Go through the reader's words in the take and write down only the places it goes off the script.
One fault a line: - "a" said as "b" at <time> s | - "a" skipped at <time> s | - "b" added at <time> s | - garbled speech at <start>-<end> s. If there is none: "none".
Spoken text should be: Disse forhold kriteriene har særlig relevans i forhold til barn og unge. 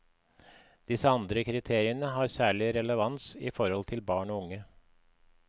- "forhold" said as "andre" at 1.2 s